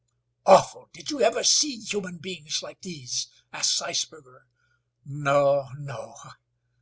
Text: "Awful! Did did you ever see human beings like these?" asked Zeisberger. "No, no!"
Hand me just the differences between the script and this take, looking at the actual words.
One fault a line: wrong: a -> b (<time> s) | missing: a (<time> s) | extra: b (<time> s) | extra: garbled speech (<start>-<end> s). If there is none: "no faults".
missing: did (1.1 s)